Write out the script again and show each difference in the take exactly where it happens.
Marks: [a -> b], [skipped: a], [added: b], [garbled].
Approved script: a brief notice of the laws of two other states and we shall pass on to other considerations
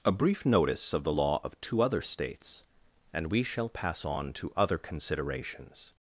a brief notice of the [laws -> law] of two other states and we shall pass on to other considerations